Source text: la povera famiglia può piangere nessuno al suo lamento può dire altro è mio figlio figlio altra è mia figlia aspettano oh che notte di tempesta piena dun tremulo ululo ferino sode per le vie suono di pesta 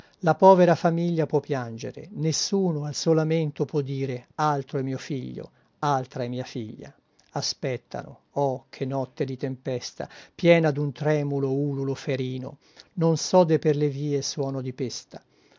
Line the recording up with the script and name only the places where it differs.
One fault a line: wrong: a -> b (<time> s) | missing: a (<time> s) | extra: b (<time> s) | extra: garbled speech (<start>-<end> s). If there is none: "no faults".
missing: figlio (5.5 s)
extra: non (12.9 s)